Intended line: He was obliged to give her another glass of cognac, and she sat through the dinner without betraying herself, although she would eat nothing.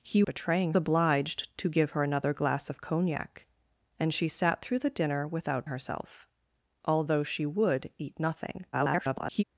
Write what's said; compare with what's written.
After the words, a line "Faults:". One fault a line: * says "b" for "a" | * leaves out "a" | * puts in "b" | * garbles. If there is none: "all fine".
He betraying obliged to give her another glass of cognac, and she sat through the dinner without herself, although she would eat nothing. [garbled]
Faults:
* says "betraying" for "was"
* leaves out "betraying"
* garbles